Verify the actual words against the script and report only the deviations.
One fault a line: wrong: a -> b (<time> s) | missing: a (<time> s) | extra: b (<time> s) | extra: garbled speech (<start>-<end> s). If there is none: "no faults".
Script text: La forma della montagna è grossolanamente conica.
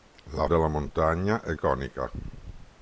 missing: forma (0.5 s)
missing: grossolanamente (1.5 s)